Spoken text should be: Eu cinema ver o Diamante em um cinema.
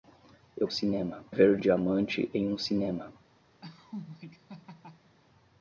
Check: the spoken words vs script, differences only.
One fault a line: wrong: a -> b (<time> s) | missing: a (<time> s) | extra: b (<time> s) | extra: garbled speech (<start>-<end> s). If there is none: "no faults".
no faults